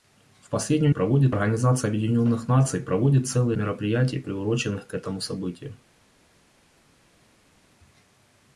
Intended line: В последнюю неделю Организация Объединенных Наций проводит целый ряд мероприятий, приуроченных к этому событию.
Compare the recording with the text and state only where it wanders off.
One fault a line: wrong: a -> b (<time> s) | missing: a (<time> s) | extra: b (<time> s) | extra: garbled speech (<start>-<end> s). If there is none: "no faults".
wrong: неделю -> проводит (0.9 s)
missing: ряд (3.6 s)